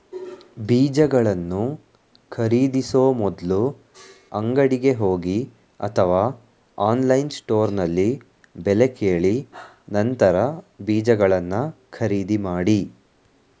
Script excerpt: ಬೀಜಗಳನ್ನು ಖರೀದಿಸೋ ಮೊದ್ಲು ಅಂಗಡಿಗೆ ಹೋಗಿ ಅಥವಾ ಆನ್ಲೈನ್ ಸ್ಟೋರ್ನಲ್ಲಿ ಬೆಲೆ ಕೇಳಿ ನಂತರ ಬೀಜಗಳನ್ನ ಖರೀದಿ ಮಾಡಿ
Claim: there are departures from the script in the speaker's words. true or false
false